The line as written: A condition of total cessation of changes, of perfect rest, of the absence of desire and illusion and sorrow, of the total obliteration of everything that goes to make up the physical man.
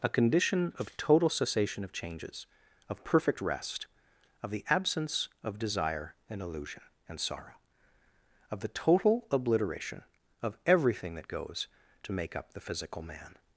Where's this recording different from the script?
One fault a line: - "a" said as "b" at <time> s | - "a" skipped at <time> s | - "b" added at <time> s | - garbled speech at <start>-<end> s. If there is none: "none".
none